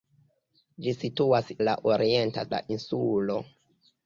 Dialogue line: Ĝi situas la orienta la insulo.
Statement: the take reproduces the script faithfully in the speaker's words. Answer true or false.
true